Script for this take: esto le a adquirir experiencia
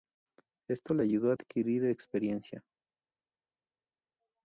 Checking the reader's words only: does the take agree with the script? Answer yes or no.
no